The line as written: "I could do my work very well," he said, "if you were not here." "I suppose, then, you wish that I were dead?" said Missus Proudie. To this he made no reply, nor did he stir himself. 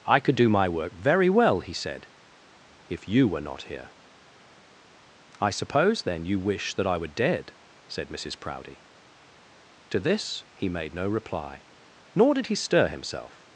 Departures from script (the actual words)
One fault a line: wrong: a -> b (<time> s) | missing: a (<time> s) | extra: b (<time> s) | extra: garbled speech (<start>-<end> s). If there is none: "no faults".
no faults